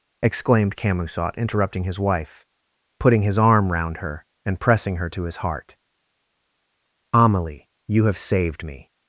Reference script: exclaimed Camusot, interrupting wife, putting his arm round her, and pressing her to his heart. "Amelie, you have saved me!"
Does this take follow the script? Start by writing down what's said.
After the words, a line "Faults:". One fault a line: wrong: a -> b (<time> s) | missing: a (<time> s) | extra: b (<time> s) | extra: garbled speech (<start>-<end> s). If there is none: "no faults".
exclaimed Camusot, interrupting his wife, putting his arm round her, and pressing her to his heart. "Amelie, you have saved me!"
Faults:
extra: his (1.8 s)